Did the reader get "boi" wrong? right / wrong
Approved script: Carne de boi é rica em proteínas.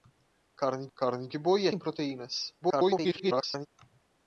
right